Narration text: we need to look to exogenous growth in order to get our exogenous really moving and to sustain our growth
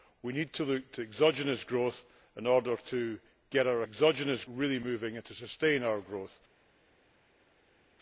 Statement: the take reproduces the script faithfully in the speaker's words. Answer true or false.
true